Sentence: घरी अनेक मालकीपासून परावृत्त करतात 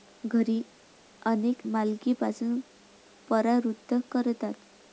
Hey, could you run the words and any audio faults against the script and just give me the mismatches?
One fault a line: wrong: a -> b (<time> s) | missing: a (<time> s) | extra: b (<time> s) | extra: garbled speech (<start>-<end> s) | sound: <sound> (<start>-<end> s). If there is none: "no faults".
no faults